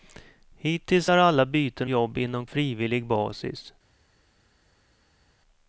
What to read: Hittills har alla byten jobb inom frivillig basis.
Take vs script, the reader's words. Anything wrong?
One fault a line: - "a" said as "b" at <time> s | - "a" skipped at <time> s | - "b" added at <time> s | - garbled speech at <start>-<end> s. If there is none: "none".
none